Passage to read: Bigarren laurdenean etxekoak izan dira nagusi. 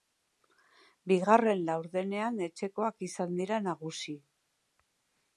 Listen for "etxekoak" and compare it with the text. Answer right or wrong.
right